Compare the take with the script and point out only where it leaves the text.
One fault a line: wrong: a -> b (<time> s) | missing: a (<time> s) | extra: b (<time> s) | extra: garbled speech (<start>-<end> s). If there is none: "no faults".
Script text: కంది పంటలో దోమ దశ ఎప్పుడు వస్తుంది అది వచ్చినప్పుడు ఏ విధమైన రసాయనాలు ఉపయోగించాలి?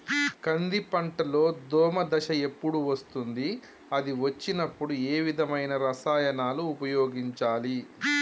no faults